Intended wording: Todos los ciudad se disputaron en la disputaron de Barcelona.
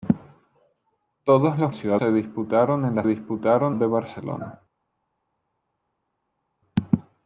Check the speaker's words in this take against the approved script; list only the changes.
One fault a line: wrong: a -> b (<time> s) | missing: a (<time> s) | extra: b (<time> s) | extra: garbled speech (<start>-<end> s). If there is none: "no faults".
no faults